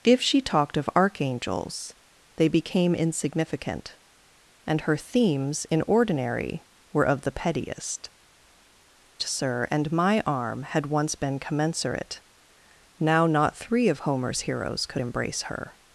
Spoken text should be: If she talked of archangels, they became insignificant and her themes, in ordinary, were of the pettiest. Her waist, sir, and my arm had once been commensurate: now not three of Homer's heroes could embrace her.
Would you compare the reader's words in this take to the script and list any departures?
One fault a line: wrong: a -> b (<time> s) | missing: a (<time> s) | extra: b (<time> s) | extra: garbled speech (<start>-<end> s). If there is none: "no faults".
missing: Her waist (8.1 s)